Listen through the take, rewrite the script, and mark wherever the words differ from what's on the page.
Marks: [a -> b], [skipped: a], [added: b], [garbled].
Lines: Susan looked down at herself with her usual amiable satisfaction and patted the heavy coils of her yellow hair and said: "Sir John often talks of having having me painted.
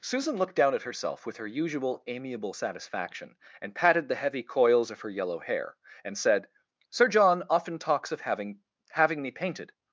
Susan looked down at herself with her usual amiable satisfaction and patted the heavy coils of her yellow hair and said: "Sir John often talks of having having me painted.